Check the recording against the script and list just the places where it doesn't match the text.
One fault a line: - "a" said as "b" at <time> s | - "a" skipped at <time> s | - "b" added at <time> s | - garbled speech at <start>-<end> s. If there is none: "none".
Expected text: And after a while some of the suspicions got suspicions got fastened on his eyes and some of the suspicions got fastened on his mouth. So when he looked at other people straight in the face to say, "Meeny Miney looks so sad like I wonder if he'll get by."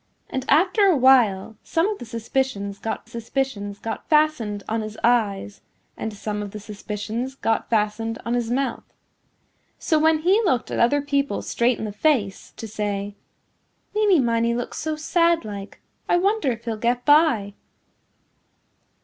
none